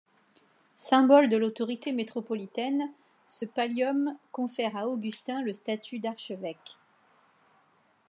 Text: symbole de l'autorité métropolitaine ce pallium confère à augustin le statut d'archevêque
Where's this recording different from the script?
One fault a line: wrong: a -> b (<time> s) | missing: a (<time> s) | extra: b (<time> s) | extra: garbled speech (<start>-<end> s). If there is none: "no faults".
no faults